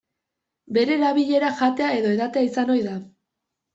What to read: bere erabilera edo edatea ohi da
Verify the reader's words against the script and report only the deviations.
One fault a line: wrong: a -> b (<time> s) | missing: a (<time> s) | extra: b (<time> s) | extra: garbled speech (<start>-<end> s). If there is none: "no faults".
extra: jatea (1.6 s)
extra: izan (2.5 s)